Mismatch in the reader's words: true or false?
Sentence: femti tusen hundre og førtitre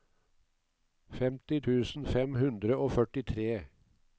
true